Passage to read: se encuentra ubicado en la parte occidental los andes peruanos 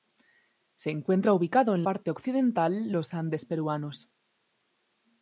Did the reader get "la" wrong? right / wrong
wrong